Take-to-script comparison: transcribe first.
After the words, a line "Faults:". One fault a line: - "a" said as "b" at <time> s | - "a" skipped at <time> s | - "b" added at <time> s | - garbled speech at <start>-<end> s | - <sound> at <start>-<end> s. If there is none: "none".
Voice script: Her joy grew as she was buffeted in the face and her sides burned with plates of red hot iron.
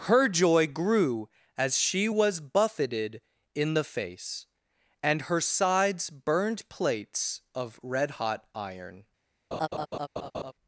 Her joy grew as she was buffeted in the face and her sides burned plates of red hot iron.
Faults:
- "with" skipped at 6.7 s
- laugh at 9.5-10.5 s